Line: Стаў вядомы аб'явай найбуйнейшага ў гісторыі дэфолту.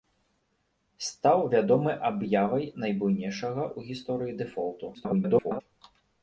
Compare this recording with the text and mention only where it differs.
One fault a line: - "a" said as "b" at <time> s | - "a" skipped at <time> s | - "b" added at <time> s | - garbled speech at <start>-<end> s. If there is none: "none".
- garbled speech at 4.9-5.6 s